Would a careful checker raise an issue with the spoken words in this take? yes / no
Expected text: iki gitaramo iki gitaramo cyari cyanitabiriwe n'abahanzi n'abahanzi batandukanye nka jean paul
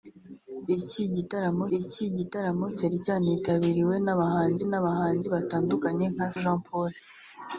no